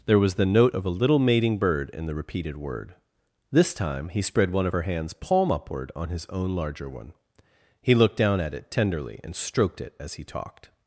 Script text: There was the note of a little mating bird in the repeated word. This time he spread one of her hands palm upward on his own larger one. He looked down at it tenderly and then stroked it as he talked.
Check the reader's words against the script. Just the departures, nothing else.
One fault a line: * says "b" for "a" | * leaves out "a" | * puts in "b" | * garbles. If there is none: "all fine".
* leaves out "then"